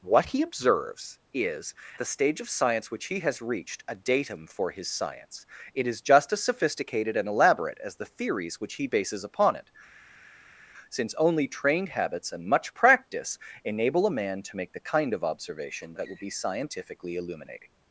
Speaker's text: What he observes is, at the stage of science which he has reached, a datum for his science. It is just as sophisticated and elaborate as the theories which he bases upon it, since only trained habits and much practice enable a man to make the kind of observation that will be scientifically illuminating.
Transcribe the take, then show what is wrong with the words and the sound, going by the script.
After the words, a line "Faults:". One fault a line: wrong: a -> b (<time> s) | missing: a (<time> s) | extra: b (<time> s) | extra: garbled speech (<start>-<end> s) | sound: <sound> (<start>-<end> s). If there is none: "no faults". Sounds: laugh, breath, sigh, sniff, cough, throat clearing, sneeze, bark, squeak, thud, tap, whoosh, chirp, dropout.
What he observes is, the stage of science which he has reached, a datum for his science. It is just as sophisticated and elaborate as the theories which he bases upon it, since only trained habits and much practice enable a man to make the kind of observation that will be scientifically illuminating.
Faults:
missing: at (1.8 s)